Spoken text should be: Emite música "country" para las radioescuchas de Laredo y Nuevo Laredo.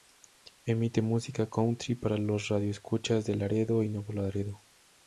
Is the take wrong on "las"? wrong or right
wrong